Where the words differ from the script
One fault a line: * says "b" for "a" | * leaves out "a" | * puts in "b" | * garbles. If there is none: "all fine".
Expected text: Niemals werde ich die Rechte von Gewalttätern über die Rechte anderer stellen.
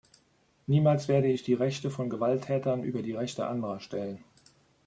all fine